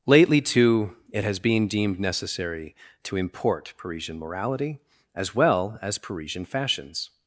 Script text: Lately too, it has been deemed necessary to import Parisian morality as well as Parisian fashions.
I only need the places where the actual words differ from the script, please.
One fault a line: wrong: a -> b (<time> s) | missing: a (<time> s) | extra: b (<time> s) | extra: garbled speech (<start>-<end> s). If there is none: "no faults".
no faults